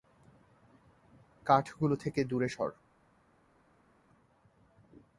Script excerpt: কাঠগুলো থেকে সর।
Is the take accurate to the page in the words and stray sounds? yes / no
no